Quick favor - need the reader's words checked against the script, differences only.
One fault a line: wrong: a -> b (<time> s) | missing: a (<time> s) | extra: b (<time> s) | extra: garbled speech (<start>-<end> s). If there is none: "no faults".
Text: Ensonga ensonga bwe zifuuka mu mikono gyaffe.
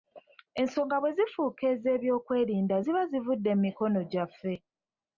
missing: ensonga (0.9 s)
extra: ez'ebyokwerinda ziba zivudde (1.7 s)